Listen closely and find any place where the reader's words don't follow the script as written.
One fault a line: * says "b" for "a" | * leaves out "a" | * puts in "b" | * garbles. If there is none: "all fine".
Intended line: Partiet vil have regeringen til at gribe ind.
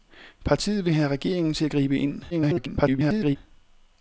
* garbles